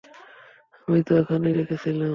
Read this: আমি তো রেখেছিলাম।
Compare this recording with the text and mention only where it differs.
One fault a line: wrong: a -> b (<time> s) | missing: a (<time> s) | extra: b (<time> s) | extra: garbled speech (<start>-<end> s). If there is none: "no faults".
extra: এখানেই (1.2 s)